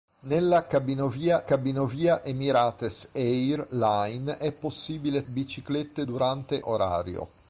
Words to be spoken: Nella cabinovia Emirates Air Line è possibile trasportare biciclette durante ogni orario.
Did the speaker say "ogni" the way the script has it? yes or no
no